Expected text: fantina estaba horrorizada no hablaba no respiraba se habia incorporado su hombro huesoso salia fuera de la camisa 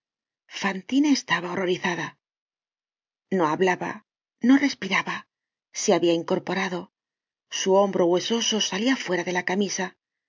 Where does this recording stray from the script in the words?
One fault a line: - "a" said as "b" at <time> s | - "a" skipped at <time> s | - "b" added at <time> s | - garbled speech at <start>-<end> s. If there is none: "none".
none